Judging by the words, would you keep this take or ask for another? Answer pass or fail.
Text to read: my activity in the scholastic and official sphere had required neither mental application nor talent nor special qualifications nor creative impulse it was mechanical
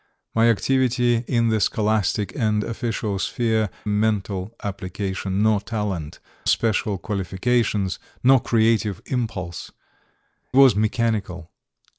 fail